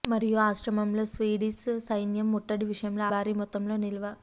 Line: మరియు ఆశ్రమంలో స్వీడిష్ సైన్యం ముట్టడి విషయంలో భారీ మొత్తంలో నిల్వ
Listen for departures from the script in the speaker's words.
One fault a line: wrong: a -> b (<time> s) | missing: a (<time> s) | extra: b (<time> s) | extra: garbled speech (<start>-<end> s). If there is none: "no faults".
no faults